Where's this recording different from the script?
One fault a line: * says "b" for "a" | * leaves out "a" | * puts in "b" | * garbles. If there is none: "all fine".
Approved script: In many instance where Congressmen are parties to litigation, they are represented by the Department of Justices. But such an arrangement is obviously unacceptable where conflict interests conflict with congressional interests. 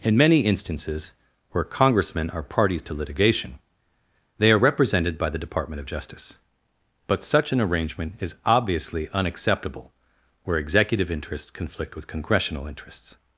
* says "instances" for "instance"
* says "Justice" for "Justices"
* says "executive" for "conflict"